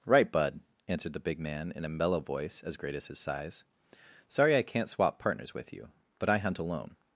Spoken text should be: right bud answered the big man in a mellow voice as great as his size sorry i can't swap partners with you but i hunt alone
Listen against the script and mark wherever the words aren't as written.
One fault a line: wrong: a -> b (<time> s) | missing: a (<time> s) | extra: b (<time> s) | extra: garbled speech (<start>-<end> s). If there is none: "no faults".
no faults